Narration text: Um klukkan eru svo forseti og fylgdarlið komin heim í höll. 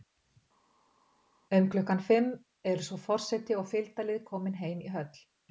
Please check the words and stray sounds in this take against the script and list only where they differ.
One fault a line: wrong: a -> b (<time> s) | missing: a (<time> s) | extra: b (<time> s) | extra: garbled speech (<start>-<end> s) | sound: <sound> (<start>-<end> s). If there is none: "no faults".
extra: fimm (2.1 s)